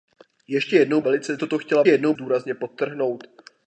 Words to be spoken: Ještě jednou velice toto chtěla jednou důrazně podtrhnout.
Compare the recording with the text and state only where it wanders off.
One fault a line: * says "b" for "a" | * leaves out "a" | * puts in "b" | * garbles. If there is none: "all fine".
all fine